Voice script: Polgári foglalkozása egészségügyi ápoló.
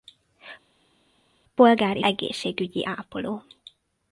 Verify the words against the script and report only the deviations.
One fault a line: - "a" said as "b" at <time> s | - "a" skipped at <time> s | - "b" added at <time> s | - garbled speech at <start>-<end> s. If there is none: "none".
- "foglalkozása" skipped at 2.0 s